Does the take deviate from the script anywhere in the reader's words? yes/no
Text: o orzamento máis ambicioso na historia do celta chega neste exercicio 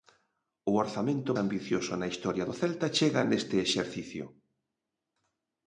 yes